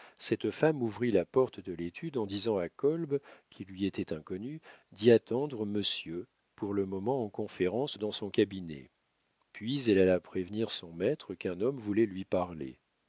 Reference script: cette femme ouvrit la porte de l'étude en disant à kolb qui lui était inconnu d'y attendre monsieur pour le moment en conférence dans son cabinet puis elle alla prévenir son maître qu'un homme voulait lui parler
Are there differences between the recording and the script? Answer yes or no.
no